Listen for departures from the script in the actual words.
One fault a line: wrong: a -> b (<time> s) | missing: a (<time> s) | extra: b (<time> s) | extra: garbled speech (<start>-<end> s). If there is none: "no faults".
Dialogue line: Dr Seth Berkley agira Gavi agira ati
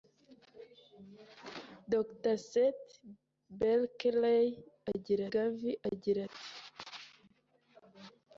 no faults